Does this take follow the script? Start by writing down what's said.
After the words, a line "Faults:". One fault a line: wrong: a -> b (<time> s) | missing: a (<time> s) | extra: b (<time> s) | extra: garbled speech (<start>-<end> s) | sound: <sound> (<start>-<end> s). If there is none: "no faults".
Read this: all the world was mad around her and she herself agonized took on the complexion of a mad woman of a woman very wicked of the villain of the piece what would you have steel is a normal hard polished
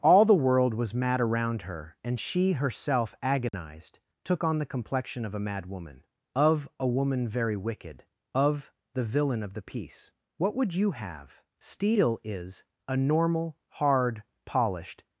all the world was mad around her and she herself agonized took on the complexion of a mad woman of a woman very wicked of the villain of the piece what would you have steel is a normal hard polished
Faults:
sound: dropout (3.5-3.5 s)